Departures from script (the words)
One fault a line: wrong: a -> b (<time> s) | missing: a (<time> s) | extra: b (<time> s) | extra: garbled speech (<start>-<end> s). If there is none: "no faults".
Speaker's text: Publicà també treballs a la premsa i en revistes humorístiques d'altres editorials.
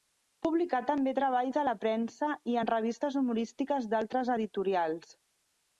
no faults